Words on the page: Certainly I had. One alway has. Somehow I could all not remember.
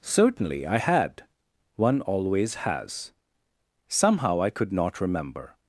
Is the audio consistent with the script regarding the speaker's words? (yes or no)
no